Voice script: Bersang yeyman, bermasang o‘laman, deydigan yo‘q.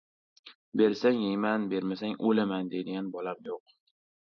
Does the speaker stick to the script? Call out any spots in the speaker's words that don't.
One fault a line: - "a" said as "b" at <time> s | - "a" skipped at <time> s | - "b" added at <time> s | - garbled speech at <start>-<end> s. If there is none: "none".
- "bolam" added at 3.2 s